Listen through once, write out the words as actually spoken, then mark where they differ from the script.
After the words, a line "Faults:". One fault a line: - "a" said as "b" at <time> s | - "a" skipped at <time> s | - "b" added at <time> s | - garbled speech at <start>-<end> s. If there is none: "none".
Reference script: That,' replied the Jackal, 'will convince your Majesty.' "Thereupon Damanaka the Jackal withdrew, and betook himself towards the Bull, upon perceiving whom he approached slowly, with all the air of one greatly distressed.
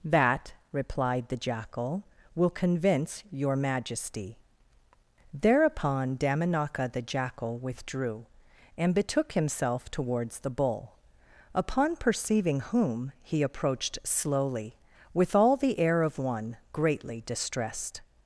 That,' replied the Jackal, 'will convince your Majesty.' "Thereupon Damanaka the Jackal withdrew, and betook himself towards the Bull, upon perceiving whom he approached slowly, with all the air of one greatly distressed.
Faults:
none